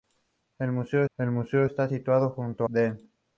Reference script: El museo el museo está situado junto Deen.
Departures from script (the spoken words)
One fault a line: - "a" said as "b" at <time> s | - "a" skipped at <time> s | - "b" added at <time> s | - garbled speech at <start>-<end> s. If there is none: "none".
none